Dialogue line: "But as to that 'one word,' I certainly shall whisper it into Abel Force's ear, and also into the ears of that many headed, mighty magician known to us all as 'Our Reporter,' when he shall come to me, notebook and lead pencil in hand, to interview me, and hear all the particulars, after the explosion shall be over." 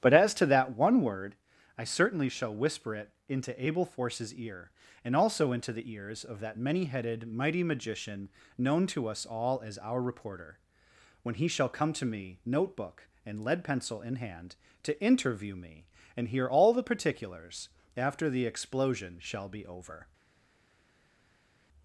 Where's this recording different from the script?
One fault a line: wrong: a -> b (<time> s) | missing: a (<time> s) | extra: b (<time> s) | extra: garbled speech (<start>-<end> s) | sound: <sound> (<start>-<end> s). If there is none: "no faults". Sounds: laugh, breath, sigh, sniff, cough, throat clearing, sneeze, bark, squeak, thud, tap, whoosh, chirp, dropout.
no faults